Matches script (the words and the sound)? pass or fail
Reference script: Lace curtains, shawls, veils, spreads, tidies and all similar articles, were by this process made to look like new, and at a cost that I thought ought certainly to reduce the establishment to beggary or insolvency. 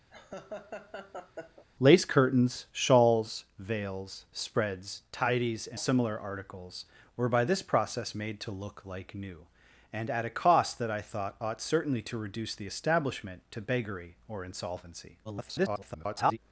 fail